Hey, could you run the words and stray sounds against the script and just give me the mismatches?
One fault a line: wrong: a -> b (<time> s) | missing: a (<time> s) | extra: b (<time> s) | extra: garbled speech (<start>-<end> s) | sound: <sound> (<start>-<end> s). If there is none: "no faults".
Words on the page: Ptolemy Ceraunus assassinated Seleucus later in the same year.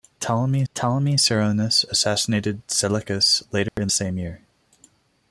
extra: ptolemy (0.7 s)
sound: dropout (3.7-3.8 s)
missing: the (3.9 s)